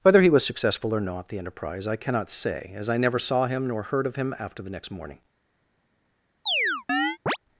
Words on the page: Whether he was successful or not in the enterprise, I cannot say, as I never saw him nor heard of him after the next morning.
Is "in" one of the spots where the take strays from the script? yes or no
yes